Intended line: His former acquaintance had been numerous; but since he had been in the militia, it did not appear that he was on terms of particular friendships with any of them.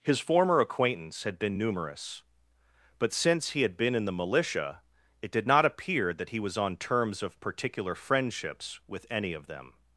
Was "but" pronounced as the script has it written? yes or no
yes